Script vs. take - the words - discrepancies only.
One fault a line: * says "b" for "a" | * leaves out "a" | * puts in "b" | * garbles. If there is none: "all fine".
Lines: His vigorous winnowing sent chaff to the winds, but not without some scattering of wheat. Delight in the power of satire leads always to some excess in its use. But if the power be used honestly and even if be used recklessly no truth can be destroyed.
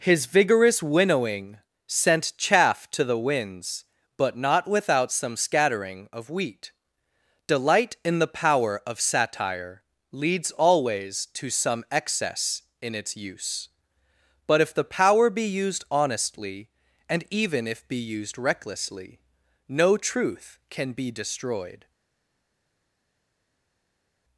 all fine